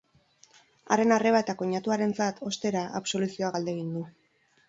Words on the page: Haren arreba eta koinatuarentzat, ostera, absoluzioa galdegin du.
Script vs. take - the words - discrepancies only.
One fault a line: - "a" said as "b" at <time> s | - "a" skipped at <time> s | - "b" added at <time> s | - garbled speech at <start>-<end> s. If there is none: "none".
none